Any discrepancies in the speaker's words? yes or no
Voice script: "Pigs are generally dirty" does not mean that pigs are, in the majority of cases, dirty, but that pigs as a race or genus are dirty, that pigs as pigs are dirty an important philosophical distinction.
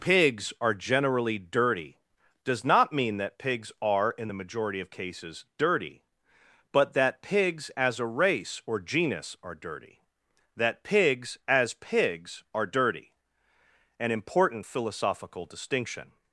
no